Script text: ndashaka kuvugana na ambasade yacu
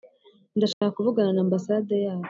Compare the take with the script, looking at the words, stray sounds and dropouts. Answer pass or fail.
fail